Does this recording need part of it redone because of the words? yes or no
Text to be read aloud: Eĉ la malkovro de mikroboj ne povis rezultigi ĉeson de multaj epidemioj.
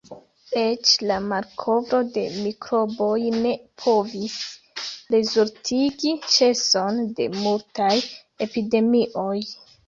no